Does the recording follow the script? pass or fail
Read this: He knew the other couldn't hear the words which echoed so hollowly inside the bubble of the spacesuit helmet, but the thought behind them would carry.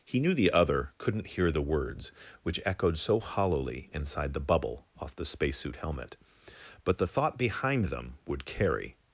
fail